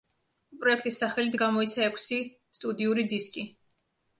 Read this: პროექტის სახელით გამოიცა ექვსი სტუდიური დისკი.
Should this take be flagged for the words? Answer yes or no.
no